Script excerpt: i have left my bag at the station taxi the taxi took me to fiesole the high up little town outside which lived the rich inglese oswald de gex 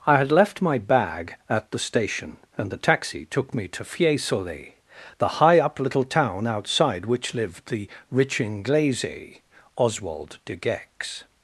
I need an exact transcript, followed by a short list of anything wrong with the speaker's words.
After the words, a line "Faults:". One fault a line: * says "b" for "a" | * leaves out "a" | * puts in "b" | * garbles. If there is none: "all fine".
i had left my bag at the station and the taxi took me to fiesole the high up little town outside which lived the rich inglese oswald de gex
Faults:
* says "had" for "have"
* says "and" for "taxi"